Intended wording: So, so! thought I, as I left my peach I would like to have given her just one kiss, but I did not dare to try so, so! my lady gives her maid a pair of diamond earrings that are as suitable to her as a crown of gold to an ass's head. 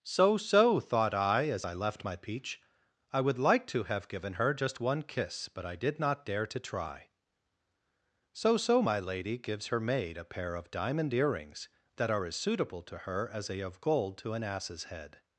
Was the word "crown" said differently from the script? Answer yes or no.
yes